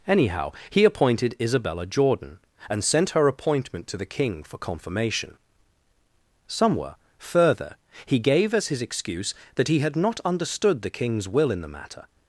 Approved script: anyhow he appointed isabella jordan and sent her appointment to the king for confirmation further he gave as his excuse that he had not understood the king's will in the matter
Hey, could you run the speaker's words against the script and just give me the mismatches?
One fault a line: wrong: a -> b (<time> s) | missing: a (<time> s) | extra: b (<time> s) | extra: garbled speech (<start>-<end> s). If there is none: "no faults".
extra: somewhere (6.5 s)